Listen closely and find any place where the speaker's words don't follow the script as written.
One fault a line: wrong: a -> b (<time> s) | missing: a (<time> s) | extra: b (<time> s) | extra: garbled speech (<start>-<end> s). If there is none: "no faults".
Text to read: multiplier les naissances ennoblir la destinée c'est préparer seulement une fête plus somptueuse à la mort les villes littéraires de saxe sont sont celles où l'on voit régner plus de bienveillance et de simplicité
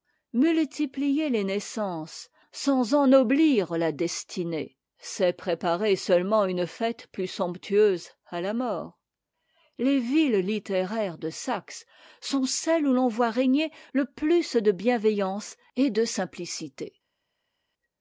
extra: sans (2.5 s)
missing: sont (12.4 s)
extra: le (13.9 s)